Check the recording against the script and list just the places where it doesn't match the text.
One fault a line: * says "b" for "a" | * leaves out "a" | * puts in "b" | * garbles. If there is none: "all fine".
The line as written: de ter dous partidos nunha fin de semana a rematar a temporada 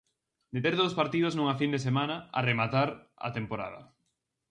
all fine